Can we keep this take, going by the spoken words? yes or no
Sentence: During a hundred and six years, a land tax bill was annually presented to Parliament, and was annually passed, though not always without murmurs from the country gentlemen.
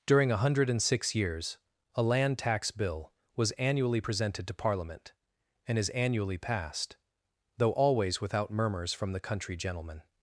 no